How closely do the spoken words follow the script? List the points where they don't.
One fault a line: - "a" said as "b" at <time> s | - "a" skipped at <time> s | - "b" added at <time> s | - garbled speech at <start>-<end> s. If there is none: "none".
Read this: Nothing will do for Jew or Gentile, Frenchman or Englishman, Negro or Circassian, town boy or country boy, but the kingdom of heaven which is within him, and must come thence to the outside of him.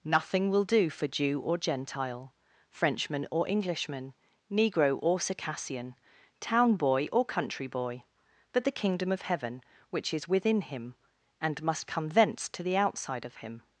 none